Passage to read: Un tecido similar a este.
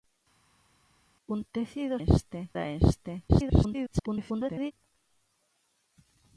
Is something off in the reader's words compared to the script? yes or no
yes